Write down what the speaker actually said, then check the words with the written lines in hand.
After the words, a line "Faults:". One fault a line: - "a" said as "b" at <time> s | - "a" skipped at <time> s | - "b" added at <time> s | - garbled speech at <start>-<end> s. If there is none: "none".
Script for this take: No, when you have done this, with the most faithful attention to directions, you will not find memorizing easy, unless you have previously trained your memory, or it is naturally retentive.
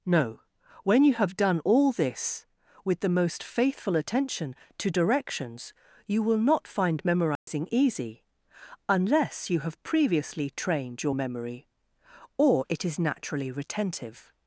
No, when you have done all this, with the most faithful attention to directions, you will not find memorizing easy, unless you have previously trained your memory, or it is naturally retentive.
Faults:
- "all" added at 1.6 s